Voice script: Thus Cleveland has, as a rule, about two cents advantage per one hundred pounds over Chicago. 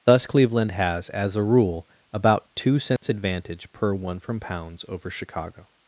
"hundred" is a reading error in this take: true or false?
true